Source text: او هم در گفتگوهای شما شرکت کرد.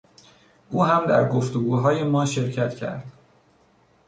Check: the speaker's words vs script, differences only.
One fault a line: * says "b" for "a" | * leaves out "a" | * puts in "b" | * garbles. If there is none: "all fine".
* says "ما" for "شما"